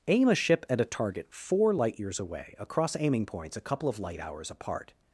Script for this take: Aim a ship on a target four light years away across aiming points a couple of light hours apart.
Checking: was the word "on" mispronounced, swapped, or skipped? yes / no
yes